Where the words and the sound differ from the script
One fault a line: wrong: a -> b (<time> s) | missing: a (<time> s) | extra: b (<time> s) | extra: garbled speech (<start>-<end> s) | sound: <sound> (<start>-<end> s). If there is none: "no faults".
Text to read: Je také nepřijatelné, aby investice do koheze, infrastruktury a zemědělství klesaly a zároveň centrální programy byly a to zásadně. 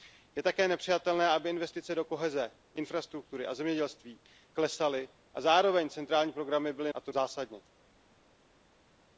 no faults